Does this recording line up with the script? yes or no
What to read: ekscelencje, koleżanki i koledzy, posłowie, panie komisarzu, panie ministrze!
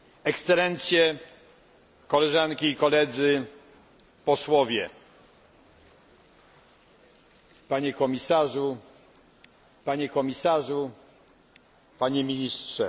no